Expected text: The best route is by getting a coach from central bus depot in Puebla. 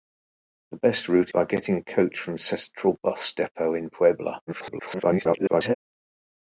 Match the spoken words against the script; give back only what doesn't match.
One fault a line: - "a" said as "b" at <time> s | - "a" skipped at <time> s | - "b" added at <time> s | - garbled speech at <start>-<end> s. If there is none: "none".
- "is" skipped at 1.3 s
- garbled speech at 4.5-5.7 s